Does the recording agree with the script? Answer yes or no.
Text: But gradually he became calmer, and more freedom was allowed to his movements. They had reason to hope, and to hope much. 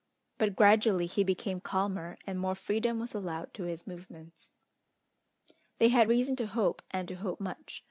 yes